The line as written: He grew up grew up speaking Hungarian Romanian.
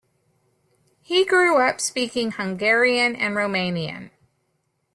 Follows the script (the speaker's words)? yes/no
no